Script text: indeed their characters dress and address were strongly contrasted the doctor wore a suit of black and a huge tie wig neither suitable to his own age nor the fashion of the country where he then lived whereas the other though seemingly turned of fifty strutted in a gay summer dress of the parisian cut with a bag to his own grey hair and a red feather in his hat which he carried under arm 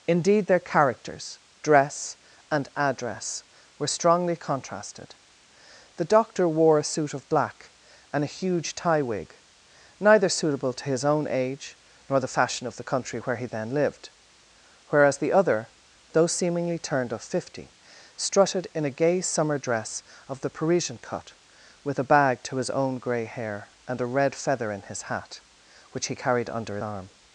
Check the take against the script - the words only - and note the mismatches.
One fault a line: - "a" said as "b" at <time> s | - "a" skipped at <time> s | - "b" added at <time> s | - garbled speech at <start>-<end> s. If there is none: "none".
none